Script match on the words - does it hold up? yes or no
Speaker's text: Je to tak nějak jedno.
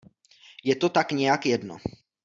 yes